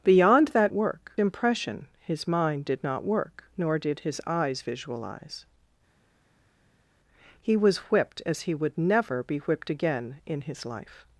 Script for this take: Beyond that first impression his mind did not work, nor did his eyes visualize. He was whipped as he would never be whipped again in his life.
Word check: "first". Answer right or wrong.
wrong